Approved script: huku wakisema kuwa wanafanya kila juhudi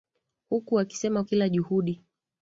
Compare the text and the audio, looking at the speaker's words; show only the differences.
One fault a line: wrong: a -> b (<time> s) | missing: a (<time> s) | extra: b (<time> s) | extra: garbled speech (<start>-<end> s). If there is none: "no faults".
missing: kuwa wanafanya (1.2 s)